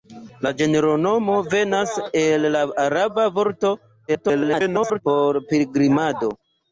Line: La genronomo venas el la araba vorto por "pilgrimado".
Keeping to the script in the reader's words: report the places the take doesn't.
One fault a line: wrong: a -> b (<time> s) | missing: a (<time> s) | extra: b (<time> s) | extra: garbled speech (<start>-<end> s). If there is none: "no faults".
extra: garbled speech (4.1-5.0 s)